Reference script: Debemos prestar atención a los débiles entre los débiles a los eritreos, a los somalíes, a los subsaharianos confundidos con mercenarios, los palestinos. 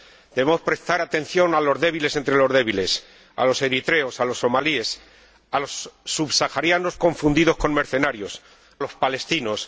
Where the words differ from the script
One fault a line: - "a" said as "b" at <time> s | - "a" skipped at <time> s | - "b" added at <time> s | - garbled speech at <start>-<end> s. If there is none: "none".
none